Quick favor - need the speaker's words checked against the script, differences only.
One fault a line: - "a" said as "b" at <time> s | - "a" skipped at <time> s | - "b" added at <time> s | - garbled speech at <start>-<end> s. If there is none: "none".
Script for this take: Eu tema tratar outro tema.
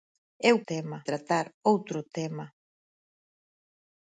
none